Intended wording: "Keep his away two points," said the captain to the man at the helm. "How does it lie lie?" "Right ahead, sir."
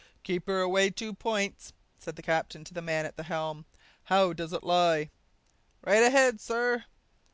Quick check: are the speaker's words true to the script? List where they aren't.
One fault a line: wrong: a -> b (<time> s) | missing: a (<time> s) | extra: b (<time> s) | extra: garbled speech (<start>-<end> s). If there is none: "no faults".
wrong: his -> her (0.5 s)
missing: lie (5.1 s)